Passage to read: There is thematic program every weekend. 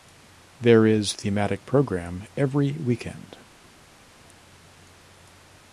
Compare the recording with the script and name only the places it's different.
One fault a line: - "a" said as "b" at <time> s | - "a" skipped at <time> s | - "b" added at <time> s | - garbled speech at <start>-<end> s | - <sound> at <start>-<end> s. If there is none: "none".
none